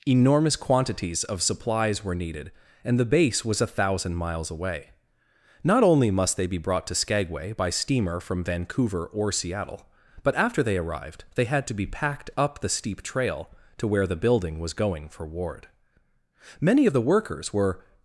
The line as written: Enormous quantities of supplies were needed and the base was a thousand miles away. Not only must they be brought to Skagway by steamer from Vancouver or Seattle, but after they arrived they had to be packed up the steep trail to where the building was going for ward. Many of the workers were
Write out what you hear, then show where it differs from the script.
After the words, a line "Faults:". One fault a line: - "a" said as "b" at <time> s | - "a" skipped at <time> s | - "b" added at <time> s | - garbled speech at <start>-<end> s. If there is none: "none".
Enormous quantities of supplies were needed and the base was a thousand miles away. Not only must they be brought to Skagway by steamer from Vancouver or Seattle, but after they arrived they had to be packed up the steep trail to where the building was going for ward. Many of the workers were
Faults:
none